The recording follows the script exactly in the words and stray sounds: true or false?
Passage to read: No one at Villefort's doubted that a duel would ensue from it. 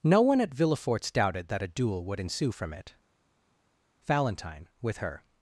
false